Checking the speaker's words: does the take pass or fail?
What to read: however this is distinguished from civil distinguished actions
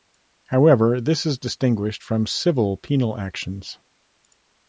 fail